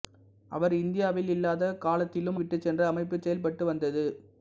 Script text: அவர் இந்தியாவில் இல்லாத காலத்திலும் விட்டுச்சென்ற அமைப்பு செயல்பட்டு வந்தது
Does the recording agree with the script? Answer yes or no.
yes